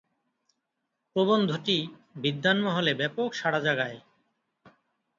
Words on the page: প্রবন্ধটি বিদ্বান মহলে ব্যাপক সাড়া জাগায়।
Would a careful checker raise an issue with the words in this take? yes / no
no